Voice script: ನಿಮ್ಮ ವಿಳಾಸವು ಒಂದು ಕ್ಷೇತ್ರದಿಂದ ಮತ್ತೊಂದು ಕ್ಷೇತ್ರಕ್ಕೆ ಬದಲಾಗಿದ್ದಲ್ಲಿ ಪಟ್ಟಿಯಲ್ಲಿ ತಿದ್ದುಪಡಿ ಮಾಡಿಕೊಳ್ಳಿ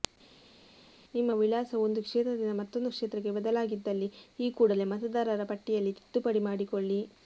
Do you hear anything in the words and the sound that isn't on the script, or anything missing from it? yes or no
yes